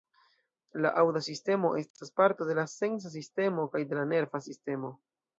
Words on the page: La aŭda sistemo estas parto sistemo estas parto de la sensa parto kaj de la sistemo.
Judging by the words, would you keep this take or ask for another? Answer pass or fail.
fail